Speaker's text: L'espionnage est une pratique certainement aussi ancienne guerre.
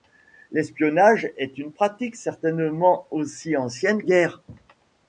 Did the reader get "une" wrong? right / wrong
right